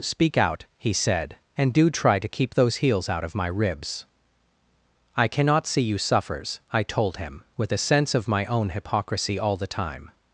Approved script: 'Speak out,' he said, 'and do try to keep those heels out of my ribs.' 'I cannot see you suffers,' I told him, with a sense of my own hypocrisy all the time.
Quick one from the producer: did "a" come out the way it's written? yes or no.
yes